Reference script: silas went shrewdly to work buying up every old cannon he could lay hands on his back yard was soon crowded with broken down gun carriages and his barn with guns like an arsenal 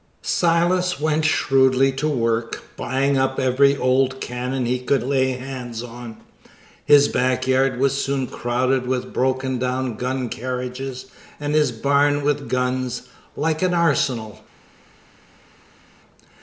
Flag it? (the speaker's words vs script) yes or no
no